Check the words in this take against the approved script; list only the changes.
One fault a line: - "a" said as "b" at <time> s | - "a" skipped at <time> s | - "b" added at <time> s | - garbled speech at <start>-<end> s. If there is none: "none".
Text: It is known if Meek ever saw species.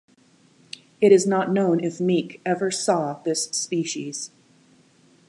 - "not" added at 1.3 s
- "this" added at 3.2 s